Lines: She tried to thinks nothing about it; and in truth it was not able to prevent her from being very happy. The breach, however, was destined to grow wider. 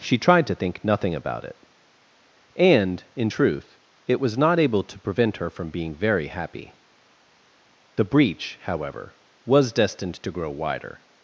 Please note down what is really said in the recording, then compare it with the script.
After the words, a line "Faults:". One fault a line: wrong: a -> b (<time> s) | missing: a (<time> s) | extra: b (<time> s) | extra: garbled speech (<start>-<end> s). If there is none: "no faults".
She tried to think nothing about it; and in truth it was not able to prevent her from being very happy. The breach, however, was destined to grow wider.
Faults:
wrong: thinks -> think (0.6 s)